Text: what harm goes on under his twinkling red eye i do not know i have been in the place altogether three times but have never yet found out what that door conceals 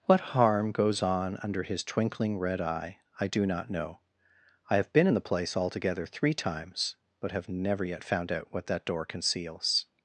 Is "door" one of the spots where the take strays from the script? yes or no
no